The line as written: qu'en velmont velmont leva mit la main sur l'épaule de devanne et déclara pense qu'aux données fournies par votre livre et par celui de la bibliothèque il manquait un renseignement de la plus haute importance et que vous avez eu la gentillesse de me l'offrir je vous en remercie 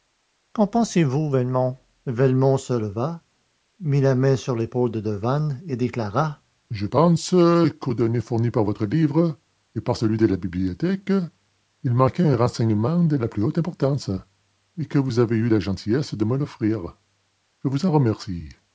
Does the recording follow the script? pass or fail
fail